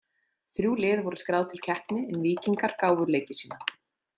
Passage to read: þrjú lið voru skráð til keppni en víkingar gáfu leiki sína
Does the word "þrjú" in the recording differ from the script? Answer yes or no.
no